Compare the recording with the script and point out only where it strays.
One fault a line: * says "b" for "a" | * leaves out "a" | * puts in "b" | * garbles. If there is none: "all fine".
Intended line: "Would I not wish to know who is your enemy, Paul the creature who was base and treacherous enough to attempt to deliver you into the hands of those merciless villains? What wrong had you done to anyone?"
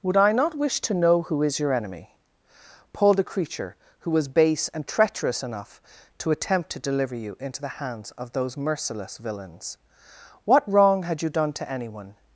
all fine